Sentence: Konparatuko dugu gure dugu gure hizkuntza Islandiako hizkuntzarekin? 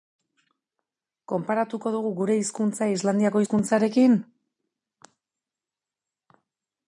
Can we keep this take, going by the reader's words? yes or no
no